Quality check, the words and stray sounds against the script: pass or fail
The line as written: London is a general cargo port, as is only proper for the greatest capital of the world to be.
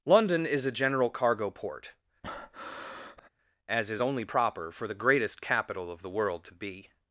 fail